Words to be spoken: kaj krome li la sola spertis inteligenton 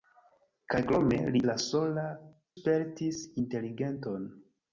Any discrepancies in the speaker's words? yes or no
no